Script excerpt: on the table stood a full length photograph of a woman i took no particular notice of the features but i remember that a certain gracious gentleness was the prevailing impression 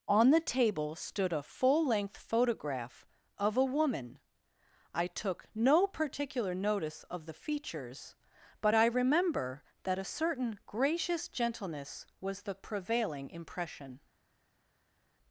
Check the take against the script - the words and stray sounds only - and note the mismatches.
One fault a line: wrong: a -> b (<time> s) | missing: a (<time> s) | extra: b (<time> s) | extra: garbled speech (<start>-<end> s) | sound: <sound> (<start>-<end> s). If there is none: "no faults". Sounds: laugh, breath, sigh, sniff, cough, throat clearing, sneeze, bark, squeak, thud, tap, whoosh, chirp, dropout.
no faults